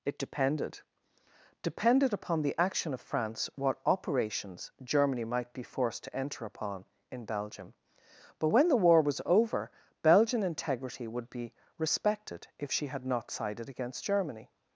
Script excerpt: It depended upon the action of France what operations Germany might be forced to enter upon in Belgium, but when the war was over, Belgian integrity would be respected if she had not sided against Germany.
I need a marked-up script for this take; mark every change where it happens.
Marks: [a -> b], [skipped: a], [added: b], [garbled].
It depended [added: depended] upon the action of France what operations Germany might be forced to enter upon in Belgium, but when the war was over, Belgian integrity would be respected if she had not sided against Germany.